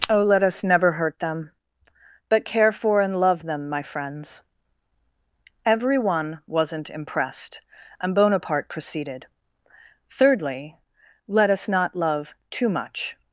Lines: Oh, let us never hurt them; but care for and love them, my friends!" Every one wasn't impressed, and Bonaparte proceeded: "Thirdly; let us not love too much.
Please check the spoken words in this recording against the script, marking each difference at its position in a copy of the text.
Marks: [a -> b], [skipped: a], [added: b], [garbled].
Oh, let us never hurt them; but care for and love them, my friends!" Every one wasn't impressed, and Bonaparte proceeded: "Thirdly; let us not love too much.